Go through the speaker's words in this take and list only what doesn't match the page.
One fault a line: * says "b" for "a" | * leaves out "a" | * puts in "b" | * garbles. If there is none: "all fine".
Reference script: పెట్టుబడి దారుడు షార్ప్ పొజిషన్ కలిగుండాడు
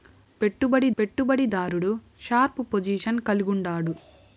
* puts in "పెట్టుబడి"